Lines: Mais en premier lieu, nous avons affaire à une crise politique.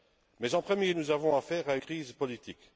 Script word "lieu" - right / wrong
wrong